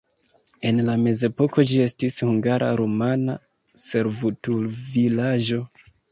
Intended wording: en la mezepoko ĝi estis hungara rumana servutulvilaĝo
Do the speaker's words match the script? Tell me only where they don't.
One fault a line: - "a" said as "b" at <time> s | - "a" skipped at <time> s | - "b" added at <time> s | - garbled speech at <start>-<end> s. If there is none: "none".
none